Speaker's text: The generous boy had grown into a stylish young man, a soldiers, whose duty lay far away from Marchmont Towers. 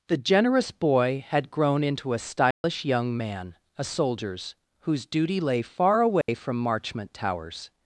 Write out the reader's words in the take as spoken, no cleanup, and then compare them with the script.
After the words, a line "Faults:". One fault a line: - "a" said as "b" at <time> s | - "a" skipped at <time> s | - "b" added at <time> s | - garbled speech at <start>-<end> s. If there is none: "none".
The generous boy had grown into a stylish young man, a soldiers, whose duty lay far away from Marchmont Towers.
Faults:
none